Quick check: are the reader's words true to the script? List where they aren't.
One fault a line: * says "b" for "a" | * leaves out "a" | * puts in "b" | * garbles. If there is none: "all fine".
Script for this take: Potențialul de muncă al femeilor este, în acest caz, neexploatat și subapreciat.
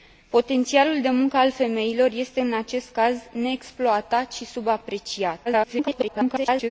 * garbles